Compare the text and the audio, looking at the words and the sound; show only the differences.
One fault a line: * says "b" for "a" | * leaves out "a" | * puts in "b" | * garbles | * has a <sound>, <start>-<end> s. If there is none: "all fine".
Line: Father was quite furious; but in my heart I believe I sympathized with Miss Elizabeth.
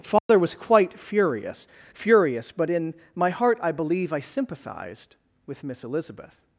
* has a dropout, 0.2-0.3 s
* puts in "furious"